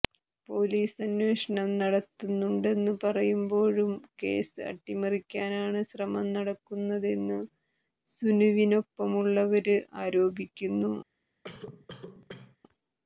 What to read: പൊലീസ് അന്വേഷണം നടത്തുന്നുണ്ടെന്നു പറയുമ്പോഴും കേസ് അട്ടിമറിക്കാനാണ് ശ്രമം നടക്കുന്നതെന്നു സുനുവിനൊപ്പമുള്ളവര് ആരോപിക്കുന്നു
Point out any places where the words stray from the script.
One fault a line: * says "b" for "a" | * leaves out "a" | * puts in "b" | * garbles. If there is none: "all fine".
all fine